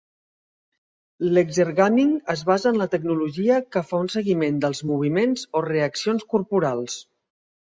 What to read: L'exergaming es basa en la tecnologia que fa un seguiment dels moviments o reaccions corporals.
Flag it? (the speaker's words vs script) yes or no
no